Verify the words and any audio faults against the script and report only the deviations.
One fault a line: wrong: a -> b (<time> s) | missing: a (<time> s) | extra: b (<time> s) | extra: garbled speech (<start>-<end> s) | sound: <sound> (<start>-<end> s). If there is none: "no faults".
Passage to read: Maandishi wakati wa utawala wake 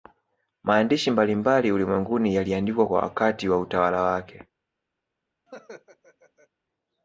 extra: mbalimbali ulimwenguni yaliandikwa (1.1 s)
sound: laugh (5.5-6.5 s)